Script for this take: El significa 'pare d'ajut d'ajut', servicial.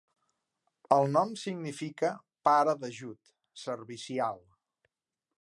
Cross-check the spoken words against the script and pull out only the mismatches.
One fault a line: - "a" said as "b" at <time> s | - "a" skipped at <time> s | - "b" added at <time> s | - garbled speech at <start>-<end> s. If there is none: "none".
- "nom" added at 1.2 s
- "d'ajut" skipped at 3.4 s